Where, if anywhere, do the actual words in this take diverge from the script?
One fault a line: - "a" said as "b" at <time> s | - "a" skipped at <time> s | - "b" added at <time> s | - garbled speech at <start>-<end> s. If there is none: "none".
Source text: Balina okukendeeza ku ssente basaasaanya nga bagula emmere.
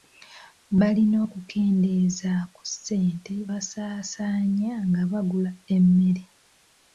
none